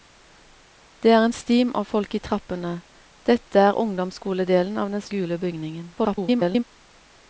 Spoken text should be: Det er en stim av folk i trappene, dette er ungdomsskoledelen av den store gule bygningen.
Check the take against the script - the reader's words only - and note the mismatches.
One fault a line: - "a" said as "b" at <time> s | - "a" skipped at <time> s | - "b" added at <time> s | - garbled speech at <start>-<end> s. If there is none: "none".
- "store" skipped at 5.0 s
- garbled speech at 6.0-6.6 s